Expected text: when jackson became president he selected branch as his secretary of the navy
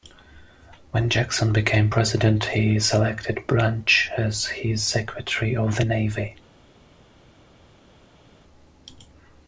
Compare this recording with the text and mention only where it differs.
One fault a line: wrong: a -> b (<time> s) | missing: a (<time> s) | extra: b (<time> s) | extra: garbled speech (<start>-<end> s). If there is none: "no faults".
no faults